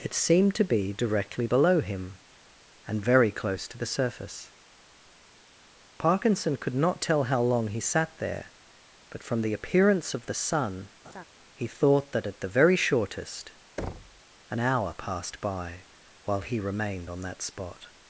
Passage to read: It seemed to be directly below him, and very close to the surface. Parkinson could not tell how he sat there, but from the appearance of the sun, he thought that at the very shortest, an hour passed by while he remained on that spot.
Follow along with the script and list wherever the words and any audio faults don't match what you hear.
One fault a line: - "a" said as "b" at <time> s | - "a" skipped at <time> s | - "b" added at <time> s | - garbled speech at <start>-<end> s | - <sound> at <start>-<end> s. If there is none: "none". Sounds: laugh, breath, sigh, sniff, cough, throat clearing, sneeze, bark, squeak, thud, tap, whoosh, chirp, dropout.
- "long" added at 7.4 s
- laugh at 11.0-11.2 s
- thud at 13.8-14.2 s